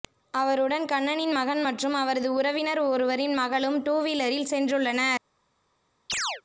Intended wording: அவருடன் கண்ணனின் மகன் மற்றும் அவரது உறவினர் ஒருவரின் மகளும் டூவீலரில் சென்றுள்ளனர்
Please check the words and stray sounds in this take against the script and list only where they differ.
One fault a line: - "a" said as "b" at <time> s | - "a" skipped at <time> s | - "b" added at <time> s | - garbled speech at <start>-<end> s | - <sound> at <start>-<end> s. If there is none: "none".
- chirp at 6.1-6.4 s